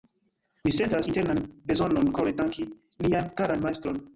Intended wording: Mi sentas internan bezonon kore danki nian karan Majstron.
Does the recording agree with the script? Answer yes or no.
yes